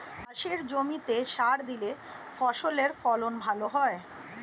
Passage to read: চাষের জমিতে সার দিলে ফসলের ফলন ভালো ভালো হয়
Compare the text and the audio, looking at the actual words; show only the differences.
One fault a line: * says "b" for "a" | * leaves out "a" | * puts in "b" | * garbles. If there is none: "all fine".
* leaves out "ভালো"